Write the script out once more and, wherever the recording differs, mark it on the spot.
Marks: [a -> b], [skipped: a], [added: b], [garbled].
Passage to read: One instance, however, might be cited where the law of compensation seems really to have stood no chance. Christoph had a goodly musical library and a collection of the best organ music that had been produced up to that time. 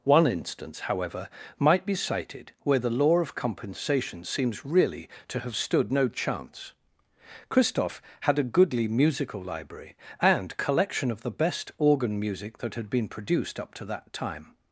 One instance, however, might be cited where the law of compensation seems really to have stood no chance. Christoph had a goodly musical library and [skipped: a] collection of the best organ music that had been produced up to that time.